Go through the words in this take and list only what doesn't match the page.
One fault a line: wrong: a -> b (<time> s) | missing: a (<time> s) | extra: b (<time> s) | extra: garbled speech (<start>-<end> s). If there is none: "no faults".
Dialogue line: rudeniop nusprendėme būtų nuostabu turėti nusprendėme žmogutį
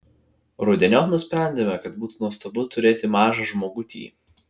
extra: kad (1.9 s)
wrong: nusprendėme -> mažą (3.2 s)